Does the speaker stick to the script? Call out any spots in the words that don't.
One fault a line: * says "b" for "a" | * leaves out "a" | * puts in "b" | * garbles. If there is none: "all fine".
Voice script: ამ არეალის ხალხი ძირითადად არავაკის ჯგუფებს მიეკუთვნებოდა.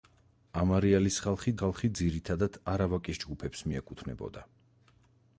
* puts in "ხალხი"